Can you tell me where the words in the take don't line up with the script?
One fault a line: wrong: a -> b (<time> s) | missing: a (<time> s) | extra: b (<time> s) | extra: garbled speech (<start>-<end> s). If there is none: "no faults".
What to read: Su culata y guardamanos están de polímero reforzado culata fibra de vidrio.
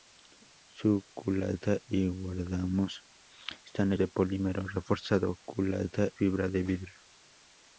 no faults